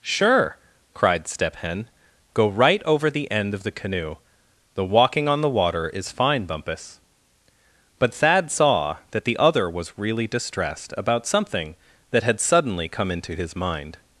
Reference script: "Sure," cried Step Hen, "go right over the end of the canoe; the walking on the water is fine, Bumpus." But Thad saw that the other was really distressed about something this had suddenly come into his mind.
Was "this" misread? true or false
true